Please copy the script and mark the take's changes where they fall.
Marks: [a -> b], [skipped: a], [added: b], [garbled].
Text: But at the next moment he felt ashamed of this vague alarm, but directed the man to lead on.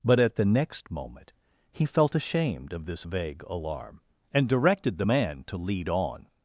But at the next moment he felt ashamed of this vague alarm, [but -> and] directed the man to lead on.